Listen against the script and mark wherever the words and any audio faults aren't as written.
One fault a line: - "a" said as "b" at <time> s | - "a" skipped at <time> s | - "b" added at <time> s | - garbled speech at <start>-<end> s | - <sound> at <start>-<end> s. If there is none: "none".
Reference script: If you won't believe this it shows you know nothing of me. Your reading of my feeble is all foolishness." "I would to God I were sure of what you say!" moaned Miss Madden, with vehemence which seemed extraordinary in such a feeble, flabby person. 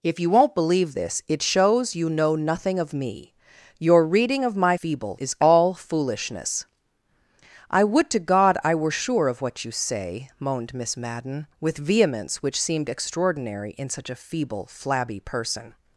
none